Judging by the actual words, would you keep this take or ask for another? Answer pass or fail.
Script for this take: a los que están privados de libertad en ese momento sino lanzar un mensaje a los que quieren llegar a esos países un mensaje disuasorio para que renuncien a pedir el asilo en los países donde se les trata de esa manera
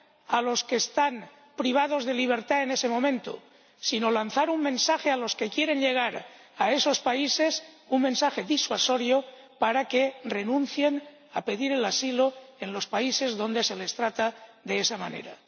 pass